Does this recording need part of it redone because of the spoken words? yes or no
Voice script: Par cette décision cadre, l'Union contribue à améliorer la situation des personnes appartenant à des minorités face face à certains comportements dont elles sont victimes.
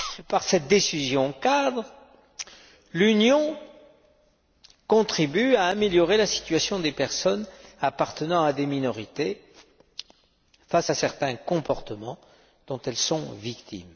yes